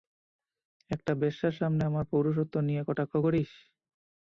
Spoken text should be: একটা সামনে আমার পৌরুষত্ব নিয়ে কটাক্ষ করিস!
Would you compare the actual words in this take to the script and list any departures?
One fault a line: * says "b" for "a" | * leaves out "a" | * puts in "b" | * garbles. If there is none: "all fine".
* puts in "বেশ্যার"